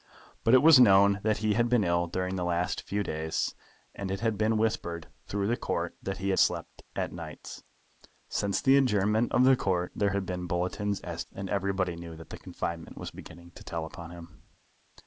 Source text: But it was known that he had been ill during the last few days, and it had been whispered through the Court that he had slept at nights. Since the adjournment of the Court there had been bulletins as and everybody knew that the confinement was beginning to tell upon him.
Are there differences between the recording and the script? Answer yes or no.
no